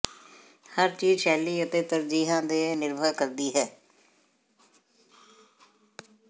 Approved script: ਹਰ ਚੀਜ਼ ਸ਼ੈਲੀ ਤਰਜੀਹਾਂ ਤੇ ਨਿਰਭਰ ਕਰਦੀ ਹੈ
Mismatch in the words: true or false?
true